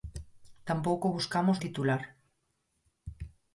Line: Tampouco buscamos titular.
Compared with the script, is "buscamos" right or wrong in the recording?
right